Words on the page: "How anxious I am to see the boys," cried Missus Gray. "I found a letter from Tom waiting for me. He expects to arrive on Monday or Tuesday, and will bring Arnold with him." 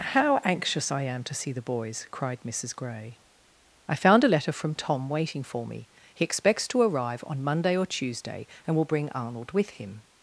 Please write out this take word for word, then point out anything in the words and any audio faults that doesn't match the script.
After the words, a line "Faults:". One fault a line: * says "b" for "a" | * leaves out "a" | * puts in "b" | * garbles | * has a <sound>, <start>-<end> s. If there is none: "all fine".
"How anxious I am to see the boys," cried Missus Gray. "I found a letter from Tom waiting for me. He expects to arrive on Monday or Tuesday, and will bring Arnold with him."
Faults:
all fine